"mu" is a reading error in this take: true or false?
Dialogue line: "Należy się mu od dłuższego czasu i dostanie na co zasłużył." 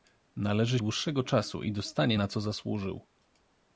true